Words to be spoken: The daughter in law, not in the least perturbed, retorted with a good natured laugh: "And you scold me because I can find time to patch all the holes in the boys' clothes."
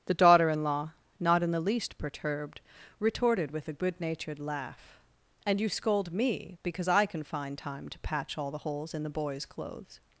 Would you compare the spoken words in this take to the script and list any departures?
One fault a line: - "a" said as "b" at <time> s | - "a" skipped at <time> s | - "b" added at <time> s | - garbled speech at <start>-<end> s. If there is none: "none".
none